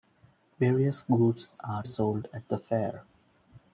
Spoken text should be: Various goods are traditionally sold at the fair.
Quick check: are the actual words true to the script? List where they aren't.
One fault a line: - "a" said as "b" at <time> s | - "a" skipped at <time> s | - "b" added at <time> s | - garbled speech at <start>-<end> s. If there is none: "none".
- "traditionally" skipped at 1.8 s